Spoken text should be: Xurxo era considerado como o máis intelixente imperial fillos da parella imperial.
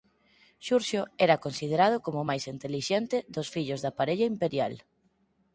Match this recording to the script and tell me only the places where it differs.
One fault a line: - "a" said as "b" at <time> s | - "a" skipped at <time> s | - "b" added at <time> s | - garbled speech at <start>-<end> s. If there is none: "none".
- "imperial" said as "dos" at 3.4 s